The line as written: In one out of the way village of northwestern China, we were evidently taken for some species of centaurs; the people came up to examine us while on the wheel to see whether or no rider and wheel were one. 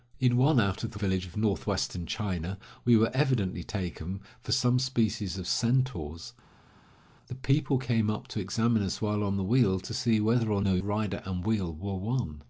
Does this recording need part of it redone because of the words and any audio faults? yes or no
yes